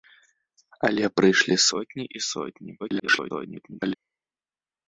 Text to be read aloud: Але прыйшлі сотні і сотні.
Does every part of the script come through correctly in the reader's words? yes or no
no